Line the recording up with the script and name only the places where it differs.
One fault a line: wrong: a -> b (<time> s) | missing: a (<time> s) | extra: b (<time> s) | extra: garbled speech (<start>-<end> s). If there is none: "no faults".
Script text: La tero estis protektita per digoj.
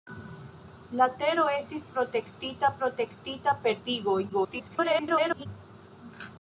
extra: protektita (2.8 s)
extra: garbled speech (4.3-5.5 s)